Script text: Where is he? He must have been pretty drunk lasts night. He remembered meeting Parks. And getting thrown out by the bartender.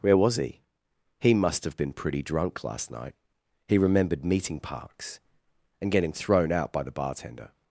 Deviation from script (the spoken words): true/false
true